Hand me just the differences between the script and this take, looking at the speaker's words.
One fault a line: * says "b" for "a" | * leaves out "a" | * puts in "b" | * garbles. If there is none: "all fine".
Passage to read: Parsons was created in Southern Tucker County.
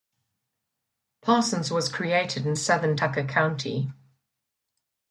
all fine